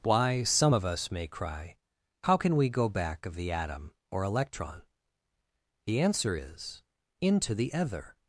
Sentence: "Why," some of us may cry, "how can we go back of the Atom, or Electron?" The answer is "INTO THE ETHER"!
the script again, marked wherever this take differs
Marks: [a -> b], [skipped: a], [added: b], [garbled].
"Why," some of us may cry, "how can we go back of the Atom, or Electron?" The answer is "INTO THE ETHER"!